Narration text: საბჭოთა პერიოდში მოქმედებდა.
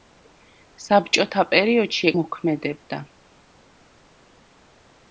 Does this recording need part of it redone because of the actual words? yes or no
no